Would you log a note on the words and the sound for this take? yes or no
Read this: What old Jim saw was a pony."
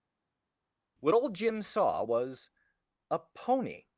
no